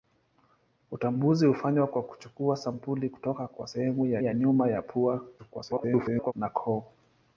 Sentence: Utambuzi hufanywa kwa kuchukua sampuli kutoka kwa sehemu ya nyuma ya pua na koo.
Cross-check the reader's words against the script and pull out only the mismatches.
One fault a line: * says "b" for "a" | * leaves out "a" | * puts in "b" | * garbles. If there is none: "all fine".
* puts in "ya"
* garbles